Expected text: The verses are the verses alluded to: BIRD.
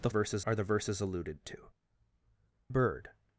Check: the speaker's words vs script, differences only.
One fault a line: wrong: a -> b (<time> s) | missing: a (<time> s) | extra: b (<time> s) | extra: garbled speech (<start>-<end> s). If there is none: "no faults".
no faults